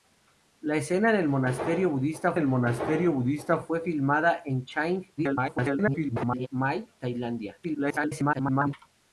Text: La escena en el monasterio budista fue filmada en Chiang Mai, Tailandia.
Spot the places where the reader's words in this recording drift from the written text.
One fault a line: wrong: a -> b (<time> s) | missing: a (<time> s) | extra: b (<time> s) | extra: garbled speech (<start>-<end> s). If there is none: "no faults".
extra: el monasterio budista (2.4 s)
extra: garbled speech (5.2-6.5 s)
extra: garbled speech (7.6-8.7 s)